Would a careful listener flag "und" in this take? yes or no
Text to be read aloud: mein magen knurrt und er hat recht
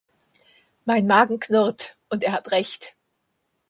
no